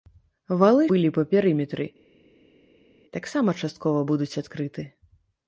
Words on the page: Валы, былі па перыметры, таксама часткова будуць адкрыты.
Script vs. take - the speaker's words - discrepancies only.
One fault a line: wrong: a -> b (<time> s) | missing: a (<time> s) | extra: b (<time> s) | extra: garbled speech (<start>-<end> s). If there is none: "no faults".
no faults